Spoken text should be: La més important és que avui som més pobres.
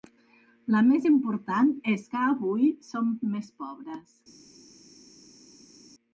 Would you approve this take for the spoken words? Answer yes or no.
yes